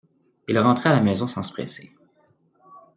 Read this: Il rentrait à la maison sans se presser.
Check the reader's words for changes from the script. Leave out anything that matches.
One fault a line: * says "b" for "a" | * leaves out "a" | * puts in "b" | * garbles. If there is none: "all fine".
all fine